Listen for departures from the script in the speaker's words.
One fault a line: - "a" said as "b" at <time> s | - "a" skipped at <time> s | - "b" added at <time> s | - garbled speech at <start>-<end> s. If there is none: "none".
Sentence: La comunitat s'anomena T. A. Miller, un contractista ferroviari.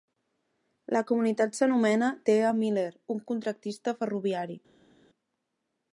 none